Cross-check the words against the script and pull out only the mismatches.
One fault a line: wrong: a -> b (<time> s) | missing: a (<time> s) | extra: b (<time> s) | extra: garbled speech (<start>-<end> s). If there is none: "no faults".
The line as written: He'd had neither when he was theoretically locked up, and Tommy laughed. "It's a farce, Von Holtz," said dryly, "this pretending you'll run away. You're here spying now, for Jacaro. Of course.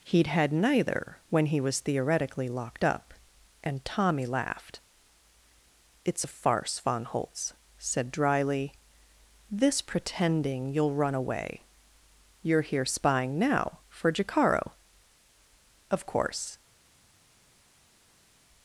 no faults